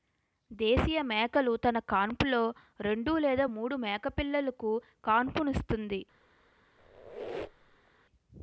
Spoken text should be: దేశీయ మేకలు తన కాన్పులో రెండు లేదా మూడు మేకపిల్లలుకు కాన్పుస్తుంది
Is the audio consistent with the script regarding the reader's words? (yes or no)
yes